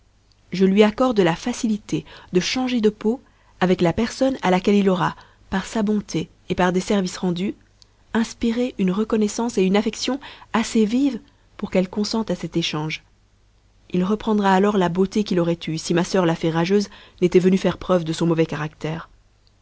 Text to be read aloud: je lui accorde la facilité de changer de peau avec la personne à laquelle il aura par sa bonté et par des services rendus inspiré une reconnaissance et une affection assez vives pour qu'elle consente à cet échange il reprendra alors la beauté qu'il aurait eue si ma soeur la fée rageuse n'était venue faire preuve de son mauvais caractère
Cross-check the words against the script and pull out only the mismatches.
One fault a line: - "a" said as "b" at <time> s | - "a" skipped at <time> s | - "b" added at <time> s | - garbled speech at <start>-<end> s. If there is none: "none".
none